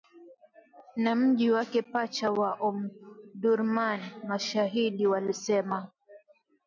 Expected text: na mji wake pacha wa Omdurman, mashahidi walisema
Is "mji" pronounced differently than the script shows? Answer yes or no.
no